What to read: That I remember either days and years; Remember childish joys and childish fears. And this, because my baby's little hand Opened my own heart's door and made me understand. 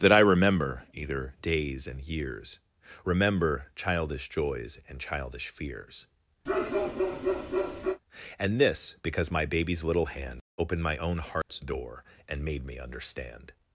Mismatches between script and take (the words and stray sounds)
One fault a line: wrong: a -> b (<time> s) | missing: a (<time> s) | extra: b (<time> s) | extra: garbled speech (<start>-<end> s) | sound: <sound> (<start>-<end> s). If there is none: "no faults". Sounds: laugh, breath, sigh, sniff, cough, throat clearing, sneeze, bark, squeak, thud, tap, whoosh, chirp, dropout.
sound: bark (6.5-8.0 s)
sound: dropout (11.4-11.5 s)